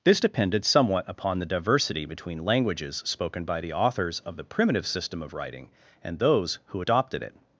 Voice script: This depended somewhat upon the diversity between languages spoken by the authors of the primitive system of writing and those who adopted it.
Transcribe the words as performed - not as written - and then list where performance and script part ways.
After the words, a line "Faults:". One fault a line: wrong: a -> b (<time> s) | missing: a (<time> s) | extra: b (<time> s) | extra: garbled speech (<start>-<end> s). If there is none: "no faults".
This depended somewhat upon the diversity between languages spoken by the authors of the primitive system of writing and those who adopted it.
Faults:
no faults